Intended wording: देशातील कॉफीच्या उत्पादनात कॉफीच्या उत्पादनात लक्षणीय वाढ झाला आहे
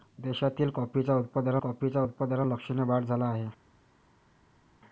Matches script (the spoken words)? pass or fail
pass